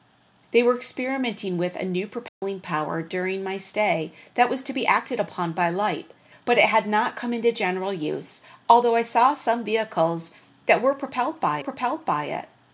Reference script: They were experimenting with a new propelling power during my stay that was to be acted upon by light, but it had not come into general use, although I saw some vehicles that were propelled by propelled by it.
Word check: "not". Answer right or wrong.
right